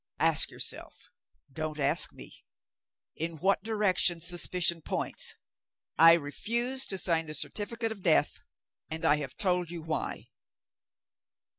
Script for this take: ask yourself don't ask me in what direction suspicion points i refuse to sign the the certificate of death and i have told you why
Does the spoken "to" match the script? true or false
true